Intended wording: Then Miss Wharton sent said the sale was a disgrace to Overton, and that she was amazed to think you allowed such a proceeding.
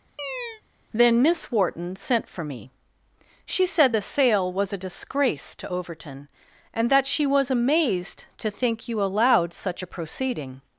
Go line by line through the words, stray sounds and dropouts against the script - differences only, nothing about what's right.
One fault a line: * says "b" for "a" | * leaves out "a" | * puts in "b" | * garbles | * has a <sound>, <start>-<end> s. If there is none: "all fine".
* has a chirp, 0.2-0.6 s
* puts in "for me She"